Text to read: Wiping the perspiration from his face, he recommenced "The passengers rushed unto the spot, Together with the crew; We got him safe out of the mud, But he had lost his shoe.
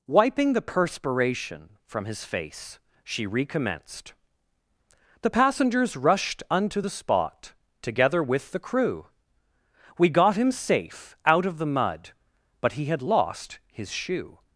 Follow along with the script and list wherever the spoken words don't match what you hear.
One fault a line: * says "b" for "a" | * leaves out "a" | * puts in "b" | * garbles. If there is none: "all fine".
* says "she" for "he"